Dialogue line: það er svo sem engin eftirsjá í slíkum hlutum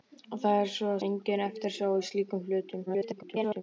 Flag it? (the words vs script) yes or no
yes